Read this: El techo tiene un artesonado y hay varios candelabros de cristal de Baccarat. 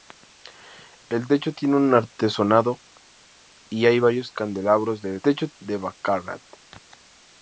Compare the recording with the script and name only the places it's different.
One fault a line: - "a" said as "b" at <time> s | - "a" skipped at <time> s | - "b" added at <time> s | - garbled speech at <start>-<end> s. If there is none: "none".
- "cristal" said as "techo" at 5.2 s